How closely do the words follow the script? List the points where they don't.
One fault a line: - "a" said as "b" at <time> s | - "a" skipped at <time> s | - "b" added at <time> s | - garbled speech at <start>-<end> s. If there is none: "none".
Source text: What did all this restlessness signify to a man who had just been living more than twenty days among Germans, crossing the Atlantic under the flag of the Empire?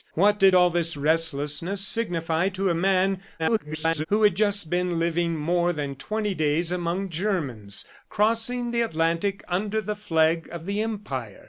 - garbled speech at 3.4-4.1 s